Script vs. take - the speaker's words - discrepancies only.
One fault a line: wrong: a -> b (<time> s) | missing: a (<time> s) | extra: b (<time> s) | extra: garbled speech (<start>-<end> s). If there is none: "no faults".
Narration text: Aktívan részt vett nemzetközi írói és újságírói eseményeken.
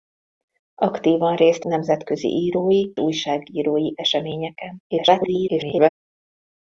missing: vett (1.6 s)
missing: és (2.9 s)
extra: garbled speech (4.9-5.9 s)